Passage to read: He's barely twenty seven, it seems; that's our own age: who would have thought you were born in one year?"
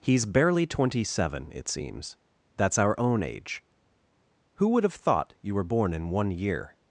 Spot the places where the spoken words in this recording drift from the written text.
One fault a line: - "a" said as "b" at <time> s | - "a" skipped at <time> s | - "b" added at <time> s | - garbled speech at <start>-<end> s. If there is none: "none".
none